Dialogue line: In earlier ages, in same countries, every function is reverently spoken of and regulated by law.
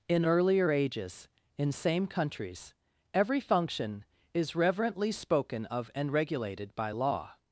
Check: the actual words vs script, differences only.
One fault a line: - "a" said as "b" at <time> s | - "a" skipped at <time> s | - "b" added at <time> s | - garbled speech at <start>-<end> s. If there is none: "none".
none